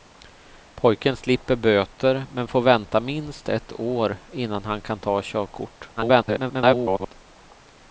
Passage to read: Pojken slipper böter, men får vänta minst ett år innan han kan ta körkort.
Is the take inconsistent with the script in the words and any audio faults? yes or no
yes